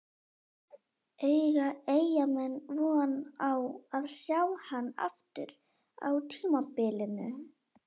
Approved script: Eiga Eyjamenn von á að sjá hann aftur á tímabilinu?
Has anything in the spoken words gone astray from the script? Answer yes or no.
no